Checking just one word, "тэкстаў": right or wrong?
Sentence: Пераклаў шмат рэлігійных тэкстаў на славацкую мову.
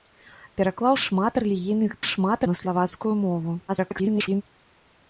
wrong